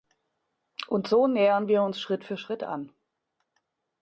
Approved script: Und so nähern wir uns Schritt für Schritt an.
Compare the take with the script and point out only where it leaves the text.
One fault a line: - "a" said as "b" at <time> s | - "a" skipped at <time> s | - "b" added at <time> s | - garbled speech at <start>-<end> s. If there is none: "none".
none